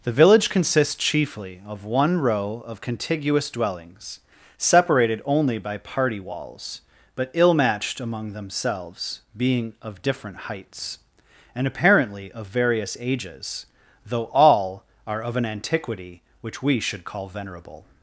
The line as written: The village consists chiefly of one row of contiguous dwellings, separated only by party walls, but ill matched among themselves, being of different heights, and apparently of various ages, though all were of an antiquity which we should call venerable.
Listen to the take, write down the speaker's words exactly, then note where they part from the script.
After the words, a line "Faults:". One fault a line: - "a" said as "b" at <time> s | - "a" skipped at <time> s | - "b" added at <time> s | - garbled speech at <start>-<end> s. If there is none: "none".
The village consists chiefly of one row of contiguous dwellings, separated only by party walls, but ill matched among themselves, being of different heights, and apparently of various ages, though all are of an antiquity which we should call venerable.
Faults:
- "were" said as "are" at 15.0 s